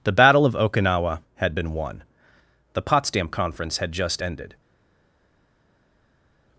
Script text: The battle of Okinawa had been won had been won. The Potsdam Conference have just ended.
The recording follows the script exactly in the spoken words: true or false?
false